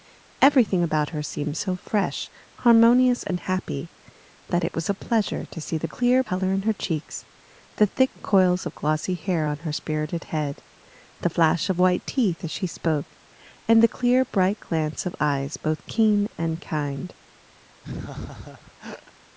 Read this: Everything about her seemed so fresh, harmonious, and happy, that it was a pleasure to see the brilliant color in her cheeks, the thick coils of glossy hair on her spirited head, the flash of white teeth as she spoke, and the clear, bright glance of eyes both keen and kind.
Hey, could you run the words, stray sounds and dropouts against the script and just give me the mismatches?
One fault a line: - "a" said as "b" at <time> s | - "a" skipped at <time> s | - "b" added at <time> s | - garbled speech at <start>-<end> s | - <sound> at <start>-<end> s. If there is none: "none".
- "brilliant" said as "clear" at 5.9 s
- laugh at 17.8-19.1 s